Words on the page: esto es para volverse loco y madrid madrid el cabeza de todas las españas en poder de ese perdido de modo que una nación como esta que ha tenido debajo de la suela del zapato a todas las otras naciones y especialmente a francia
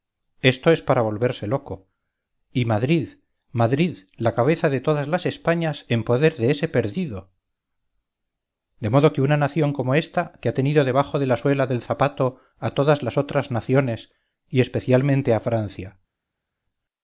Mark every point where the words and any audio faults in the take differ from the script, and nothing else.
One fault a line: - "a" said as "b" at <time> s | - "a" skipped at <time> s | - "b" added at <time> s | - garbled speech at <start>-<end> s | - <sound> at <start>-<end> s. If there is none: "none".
- "el" said as "la" at 4.2 s